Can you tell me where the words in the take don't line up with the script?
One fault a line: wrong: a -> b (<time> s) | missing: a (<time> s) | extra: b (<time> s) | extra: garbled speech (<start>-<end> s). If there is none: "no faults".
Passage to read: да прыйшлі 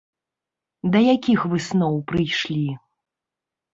extra: якіх высноў (1.1 s)